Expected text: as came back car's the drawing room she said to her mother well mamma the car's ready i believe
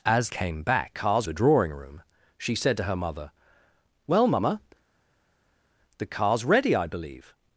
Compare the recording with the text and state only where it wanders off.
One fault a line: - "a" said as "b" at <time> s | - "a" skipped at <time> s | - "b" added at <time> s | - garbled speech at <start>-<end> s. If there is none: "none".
none